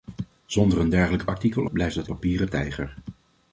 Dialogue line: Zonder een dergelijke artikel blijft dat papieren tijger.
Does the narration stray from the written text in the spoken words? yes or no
no